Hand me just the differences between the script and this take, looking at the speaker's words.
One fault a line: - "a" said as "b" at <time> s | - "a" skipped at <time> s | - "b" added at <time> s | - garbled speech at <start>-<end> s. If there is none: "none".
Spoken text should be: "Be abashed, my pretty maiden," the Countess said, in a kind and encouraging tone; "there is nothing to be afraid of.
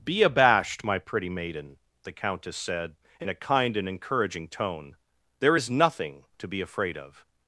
none